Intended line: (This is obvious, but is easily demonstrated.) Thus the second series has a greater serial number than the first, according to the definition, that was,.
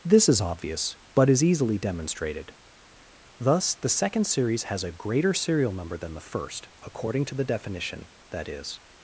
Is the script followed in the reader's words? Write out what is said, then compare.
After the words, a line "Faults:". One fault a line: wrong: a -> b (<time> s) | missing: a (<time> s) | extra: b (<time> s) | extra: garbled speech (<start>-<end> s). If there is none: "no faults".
(This is obvious, but is easily demonstrated.) Thus the second series has a greater serial number than the first, according to the definition, that is,.
Faults:
wrong: was -> is (8.5 s)